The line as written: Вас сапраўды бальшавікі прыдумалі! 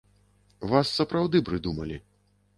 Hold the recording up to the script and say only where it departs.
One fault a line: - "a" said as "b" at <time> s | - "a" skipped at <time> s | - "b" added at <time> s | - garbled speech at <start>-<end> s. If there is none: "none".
- "бальшавікі" skipped at 1.4 s